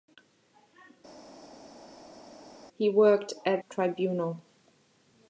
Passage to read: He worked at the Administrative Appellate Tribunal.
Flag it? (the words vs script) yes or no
yes